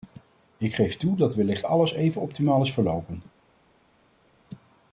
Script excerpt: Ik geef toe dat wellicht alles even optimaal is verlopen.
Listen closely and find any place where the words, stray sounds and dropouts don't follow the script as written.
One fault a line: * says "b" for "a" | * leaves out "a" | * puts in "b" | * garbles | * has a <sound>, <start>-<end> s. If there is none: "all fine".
all fine